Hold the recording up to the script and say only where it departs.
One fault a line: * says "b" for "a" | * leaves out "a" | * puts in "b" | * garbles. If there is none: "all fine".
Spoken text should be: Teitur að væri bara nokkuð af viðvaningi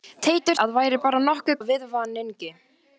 all fine